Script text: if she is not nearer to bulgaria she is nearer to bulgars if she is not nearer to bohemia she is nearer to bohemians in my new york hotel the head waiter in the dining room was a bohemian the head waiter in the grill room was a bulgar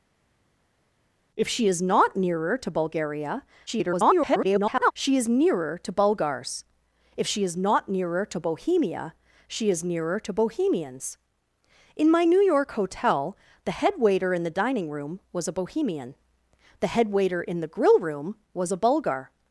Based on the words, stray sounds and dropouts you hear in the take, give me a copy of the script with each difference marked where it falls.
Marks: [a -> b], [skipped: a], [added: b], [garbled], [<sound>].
if she is not nearer to bulgaria [garbled] she is nearer to bulgars if she is not nearer to bohemia she is nearer to bohemians in my new york hotel the head waiter in the dining room was a bohemian the head waiter in the grill room was a bulgar